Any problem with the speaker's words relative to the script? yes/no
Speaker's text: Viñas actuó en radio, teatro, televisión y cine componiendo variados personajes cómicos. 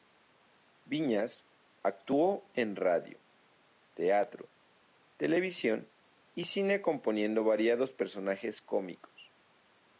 no